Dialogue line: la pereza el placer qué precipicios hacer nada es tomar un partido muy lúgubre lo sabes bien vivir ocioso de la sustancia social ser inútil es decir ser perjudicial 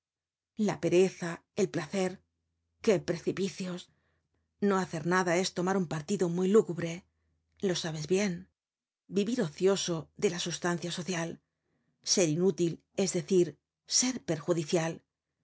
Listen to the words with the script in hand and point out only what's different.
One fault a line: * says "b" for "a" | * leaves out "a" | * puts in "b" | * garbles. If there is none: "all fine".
* puts in "no"